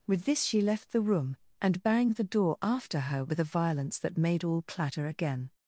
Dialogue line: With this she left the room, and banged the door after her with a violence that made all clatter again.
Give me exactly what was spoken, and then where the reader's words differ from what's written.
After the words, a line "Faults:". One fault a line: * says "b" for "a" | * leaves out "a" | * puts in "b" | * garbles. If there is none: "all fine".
With this she left the room, and banged the door after her with a violence that made all clatter again.
Faults:
all fine